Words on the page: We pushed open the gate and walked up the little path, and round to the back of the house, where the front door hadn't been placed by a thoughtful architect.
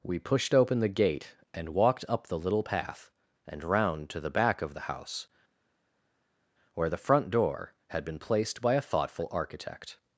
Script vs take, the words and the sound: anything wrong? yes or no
yes